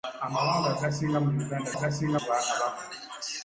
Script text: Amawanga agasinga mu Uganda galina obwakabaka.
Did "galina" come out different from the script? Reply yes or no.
yes